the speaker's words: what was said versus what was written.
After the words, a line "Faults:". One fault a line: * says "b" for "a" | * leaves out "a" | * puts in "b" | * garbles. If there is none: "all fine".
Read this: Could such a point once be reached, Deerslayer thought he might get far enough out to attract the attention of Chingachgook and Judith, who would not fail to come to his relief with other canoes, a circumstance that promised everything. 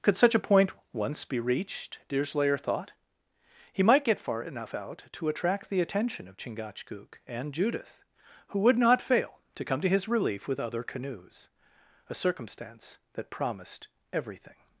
Could such a point once be reached, Deerslayer thought he might get far enough out to attract the attention of Chingachgook and Judith, who would not fail to come to his relief with other canoes, a circumstance that promised everything.
Faults:
all fine